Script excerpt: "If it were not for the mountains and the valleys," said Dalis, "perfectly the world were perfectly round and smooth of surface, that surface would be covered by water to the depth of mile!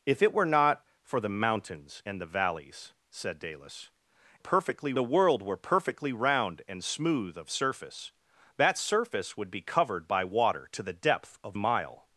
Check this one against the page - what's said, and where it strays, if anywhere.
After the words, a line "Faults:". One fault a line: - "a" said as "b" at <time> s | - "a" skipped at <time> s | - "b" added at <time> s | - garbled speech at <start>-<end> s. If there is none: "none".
"If it were not for the mountains and the valleys," said Dalis, "perfectly the world were perfectly round and smooth of surface, that surface would be covered by water to the depth of mile!
Faults:
none